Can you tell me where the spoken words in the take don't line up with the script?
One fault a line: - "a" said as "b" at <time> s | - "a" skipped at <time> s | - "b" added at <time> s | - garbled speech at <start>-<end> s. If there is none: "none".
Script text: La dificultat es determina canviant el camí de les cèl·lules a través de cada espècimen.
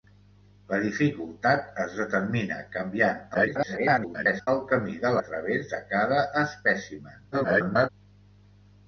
- garbled speech at 3.3-4.5 s
- "les cèl·lules" skipped at 5.2 s
- garbled speech at 7.3-7.9 s